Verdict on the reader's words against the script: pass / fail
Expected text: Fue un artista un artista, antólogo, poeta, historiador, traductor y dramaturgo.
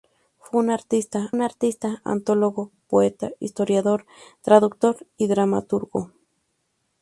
pass